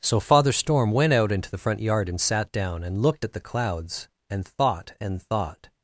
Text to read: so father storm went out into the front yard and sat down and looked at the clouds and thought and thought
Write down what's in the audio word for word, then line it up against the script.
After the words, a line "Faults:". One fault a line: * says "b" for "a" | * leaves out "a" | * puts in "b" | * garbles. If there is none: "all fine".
so father storm went out into the front yard and sat down and looked at the clouds and thought and thought
Faults:
all fine